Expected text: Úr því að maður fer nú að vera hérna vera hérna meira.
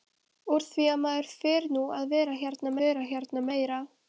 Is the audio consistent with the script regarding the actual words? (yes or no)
yes